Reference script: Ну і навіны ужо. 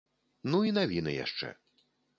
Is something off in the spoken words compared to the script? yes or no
yes